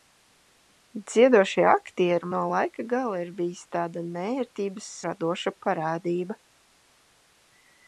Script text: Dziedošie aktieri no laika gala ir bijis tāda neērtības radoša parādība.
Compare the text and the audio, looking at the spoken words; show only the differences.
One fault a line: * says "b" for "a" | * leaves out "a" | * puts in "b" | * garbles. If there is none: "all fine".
all fine